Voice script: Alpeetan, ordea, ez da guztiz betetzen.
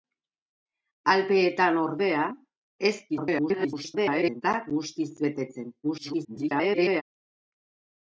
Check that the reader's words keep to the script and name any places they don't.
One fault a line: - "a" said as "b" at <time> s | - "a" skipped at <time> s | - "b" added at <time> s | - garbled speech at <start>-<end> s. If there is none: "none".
- garbled speech at 3.1-4.4 s
- garbled speech at 5.8-7.0 s